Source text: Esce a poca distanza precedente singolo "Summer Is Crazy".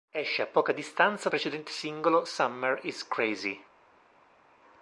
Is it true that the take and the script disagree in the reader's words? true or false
false